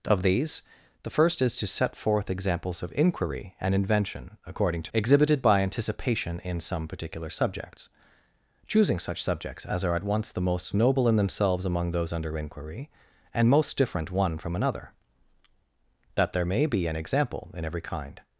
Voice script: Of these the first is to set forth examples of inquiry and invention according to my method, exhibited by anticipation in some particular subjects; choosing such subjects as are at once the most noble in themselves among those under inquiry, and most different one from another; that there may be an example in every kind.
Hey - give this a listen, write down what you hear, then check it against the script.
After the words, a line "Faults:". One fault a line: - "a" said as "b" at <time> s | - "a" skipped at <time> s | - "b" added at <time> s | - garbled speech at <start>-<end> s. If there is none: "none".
Of these the first is to set forth examples of inquiry and invention according to exhibited by anticipation in some particular subjects; choosing such subjects as are at once the most noble in themselves among those under inquiry, and most different one from another; that there may be an example in every kind.
Faults:
- "my method" skipped at 4.9 s